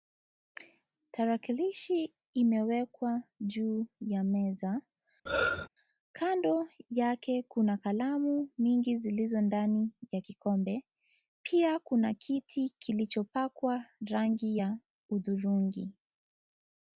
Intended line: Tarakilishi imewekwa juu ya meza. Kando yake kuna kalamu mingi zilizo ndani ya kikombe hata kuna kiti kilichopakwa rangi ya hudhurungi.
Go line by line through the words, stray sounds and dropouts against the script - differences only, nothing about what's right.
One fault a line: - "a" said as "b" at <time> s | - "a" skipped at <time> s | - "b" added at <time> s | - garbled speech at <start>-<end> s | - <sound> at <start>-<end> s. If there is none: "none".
- throat clearing at 5.3-5.7 s
- "hata" said as "pia" at 11.4 s